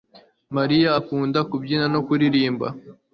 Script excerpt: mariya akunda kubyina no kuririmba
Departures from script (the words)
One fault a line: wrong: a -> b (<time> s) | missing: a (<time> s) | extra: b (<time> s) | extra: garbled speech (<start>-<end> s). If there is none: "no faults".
no faults